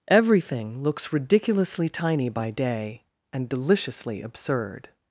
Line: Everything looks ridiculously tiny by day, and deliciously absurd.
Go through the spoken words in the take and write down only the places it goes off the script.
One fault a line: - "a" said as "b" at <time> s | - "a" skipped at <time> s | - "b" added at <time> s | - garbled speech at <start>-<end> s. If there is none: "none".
none